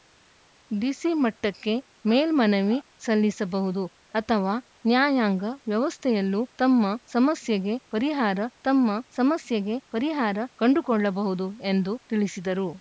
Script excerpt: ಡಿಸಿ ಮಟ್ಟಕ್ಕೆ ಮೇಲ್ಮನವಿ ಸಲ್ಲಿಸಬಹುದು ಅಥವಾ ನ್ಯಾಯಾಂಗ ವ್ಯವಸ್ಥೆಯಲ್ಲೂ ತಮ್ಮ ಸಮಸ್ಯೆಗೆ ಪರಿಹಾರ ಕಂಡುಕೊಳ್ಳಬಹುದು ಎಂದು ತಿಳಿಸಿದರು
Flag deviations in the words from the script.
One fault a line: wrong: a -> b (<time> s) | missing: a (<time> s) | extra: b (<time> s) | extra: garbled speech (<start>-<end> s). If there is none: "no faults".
extra: ತಮ್ಮ ಸಮಸ್ಯೆಗೆ ಪರಿಹಾರ (8.6 s)